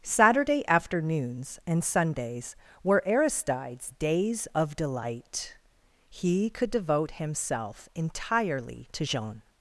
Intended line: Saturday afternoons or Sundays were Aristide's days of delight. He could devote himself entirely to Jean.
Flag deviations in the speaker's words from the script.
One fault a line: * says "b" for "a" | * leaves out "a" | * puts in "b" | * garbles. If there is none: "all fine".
* says "and" for "or"